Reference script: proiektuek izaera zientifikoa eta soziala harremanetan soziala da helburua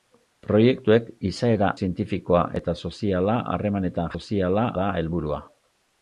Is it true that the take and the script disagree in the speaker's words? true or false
false